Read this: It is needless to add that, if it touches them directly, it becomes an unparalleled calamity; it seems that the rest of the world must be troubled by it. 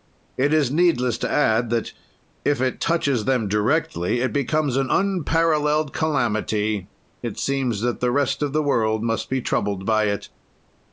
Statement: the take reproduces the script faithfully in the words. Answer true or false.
true